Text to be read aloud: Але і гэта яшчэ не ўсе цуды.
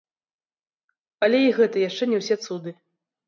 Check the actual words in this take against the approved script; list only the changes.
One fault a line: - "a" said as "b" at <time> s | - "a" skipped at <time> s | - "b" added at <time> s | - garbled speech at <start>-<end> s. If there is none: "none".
none